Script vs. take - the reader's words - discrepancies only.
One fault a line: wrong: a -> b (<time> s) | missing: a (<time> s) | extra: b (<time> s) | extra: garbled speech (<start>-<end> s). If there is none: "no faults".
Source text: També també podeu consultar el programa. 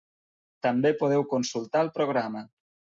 missing: també (0.9 s)